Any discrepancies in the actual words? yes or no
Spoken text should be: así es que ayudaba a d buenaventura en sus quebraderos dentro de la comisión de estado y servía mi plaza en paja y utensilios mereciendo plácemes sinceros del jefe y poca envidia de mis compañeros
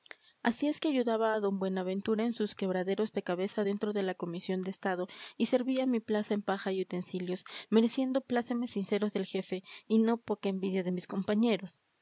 yes